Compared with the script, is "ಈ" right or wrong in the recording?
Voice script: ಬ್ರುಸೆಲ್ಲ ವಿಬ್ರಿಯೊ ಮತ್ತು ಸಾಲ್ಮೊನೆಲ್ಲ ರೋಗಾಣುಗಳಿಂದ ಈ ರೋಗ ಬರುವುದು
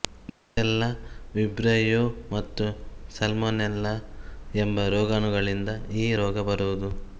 right